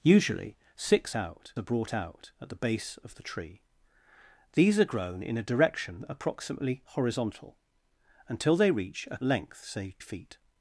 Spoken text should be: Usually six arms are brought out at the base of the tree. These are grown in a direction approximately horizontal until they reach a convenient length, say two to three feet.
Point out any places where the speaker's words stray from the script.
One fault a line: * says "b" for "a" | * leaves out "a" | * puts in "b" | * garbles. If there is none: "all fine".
* says "out" for "arms"
* leaves out "convenient"
* leaves out "two to three"